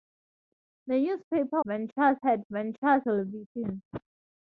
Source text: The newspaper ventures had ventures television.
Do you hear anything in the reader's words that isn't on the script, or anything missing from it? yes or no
no